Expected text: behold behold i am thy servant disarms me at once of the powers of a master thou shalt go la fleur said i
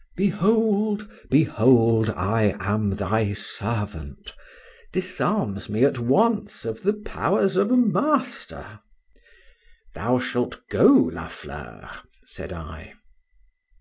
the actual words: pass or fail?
pass